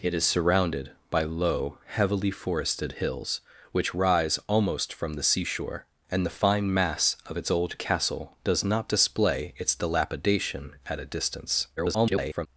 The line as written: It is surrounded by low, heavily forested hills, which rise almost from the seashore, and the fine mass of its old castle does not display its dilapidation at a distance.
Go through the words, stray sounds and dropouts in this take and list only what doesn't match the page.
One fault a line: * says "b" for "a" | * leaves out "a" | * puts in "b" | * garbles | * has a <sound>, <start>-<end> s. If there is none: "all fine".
* garbles